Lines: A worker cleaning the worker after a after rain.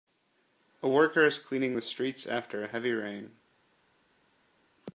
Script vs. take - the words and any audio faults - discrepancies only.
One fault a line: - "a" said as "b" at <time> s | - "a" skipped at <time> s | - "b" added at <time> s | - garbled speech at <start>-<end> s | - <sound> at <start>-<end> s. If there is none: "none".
- "is" added at 1.2 s
- "worker" said as "streets" at 1.8 s
- "after" said as "heavy" at 2.7 s